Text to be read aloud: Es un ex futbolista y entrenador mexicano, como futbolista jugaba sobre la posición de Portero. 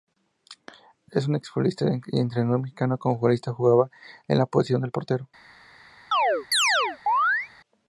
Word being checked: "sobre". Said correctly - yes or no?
no